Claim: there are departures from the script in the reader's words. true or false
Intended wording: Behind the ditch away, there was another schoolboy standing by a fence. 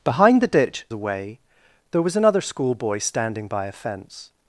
false